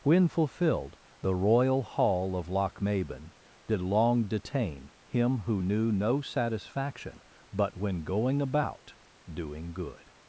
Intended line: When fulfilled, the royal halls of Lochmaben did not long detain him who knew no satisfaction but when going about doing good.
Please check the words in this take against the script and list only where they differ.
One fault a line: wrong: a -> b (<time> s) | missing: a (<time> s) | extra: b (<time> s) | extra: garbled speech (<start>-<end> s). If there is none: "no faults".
wrong: halls -> hall (1.8 s)
missing: not (3.8 s)